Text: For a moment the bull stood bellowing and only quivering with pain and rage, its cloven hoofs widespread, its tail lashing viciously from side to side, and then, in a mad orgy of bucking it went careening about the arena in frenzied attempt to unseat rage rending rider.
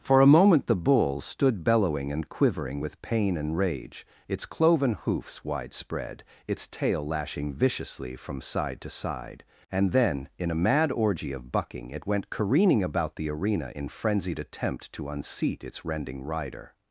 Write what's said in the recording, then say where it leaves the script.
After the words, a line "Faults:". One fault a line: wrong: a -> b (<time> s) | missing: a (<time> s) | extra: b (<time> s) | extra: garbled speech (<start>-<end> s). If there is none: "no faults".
For a moment the bull stood bellowing and quivering with pain and rage, its cloven hoofs widespread, its tail lashing viciously from side to side, and then, in a mad orgy of bucking it went careening about the arena in frenzied attempt to unseat its rending rider.
Faults:
missing: only (2.3 s)
wrong: rage -> its (15.6 s)